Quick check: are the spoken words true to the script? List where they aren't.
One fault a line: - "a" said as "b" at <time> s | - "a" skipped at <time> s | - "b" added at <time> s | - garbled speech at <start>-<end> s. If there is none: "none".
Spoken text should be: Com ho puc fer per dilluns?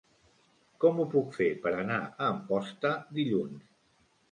- "anar a Amposta" added at 1.8 s